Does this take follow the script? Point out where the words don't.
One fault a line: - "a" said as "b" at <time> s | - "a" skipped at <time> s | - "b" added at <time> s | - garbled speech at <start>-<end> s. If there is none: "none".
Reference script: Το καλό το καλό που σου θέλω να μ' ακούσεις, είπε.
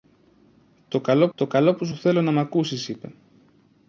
none